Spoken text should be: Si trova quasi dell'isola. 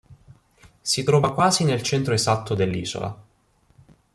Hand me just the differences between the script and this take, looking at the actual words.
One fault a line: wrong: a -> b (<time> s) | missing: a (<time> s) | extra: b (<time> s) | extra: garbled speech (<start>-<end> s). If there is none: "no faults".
extra: nel centro esatto (1.6 s)